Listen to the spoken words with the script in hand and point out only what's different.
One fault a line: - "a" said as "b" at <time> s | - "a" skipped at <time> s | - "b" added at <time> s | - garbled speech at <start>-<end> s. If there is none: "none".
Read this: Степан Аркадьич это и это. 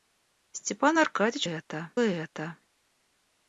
none